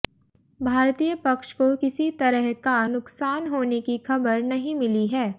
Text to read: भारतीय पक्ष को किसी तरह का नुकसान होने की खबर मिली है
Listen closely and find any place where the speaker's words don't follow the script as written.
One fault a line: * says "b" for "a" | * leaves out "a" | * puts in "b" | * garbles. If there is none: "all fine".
* puts in "नहीं"